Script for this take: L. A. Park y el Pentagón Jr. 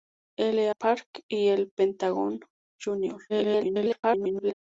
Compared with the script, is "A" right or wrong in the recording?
wrong